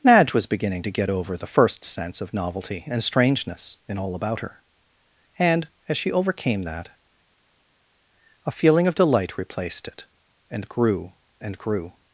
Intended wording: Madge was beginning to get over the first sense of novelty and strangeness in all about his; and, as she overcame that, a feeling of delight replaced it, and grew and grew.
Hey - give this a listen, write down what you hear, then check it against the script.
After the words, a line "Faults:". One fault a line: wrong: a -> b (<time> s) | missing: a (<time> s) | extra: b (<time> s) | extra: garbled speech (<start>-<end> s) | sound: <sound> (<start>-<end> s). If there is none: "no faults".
Madge was beginning to get over the first sense of novelty and strangeness in all about her; and, as she overcame that, a feeling of delight replaced it, and grew and grew.
Faults:
wrong: his -> her (4.4 s)